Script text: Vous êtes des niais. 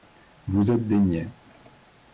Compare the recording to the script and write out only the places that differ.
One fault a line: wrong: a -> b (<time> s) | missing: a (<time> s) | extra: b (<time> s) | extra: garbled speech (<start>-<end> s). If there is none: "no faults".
no faults